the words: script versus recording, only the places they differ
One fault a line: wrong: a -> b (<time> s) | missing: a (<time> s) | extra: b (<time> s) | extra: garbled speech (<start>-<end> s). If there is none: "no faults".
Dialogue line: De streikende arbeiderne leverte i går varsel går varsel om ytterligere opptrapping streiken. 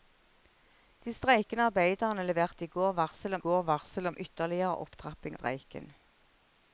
no faults